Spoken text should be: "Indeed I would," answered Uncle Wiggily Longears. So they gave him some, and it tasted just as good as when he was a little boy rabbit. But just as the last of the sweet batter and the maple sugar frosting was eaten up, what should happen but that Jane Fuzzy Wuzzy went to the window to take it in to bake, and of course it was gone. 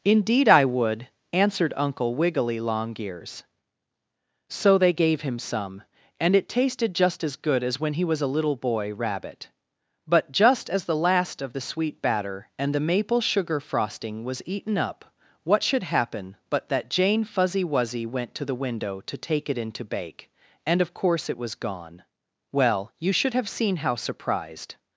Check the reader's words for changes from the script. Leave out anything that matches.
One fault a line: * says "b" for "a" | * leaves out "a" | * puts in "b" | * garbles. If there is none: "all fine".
* puts in "Well you should have seen how surprised"